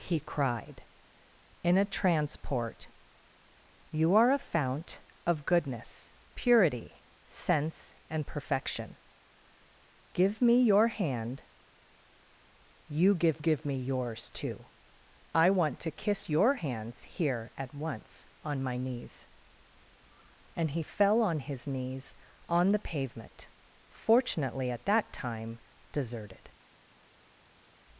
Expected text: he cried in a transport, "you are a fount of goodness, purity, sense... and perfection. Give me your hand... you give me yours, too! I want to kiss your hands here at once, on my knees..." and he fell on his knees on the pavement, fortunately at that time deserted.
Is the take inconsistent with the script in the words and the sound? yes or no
yes